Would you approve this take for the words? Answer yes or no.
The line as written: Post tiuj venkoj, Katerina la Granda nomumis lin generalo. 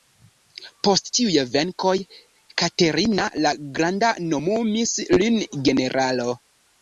yes